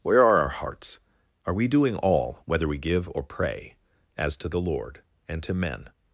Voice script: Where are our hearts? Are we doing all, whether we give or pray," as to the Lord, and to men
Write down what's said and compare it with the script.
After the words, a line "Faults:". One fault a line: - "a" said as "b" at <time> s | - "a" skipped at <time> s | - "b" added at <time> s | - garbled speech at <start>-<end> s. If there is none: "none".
Where are our hearts? Are we doing all, whether we give or pray," as to the Lord, and to men
Faults:
none